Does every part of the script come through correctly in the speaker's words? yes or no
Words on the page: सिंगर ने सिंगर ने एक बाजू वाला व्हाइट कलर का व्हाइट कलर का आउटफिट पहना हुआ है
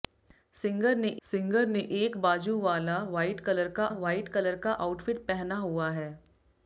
yes